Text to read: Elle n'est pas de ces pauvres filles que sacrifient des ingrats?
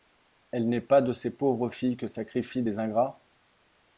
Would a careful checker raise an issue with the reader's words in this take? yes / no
no